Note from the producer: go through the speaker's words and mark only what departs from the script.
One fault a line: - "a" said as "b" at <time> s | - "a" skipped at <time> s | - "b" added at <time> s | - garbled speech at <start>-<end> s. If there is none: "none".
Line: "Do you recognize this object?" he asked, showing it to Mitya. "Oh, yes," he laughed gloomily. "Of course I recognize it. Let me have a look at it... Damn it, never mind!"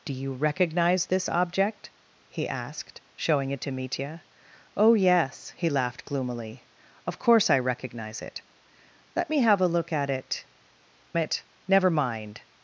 - "Damn" skipped at 10.4 s